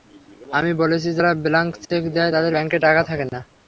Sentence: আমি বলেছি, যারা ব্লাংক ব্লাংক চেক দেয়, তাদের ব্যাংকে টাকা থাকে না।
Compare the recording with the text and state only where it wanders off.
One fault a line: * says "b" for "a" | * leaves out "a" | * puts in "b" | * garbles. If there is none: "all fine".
* leaves out "ব্লাংক"